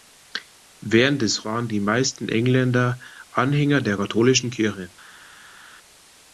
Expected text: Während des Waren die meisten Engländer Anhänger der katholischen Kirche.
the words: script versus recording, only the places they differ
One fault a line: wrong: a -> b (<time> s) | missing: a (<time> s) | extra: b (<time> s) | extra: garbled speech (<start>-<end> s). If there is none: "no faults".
no faults